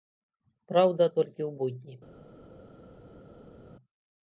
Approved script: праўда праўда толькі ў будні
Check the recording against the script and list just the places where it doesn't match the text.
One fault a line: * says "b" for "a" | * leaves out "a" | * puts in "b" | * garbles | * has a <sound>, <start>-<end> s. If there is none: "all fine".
* leaves out "праўда"